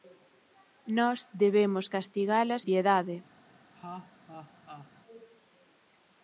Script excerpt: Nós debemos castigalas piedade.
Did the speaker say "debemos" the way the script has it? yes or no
yes